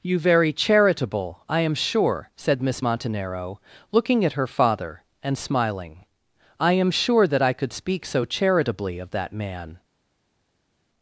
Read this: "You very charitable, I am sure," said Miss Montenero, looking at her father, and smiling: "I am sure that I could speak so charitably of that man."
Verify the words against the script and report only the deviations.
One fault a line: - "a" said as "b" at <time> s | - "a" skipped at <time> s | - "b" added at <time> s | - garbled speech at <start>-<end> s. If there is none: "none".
none